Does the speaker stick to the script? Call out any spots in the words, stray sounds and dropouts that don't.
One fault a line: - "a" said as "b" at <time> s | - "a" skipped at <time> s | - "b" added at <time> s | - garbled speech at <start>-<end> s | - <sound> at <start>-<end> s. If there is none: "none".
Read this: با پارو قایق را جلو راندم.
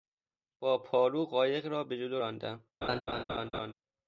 - "به" added at 1.8 s
- laugh at 2.8-3.7 s